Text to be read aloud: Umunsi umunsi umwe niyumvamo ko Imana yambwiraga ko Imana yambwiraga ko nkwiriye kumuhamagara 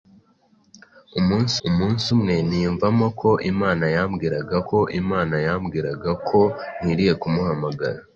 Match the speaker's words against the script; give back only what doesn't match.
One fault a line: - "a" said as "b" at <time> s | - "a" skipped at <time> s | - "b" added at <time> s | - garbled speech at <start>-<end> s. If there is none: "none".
none